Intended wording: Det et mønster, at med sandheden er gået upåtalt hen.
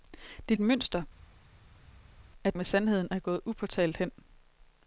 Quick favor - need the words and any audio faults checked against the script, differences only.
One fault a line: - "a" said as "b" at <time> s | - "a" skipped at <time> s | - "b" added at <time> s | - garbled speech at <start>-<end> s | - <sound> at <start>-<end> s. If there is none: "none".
none